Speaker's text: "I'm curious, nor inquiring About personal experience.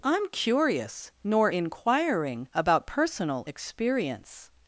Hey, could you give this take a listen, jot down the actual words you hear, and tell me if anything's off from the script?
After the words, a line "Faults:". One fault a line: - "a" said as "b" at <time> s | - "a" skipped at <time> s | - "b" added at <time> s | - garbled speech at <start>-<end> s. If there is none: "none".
"I'm curious, nor inquiring About personal experience.
Faults:
none